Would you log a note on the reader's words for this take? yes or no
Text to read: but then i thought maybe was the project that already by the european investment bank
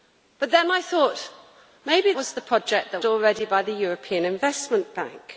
no